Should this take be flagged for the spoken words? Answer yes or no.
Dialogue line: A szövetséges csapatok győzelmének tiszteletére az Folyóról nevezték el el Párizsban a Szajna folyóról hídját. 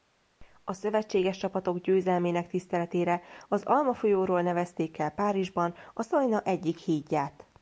yes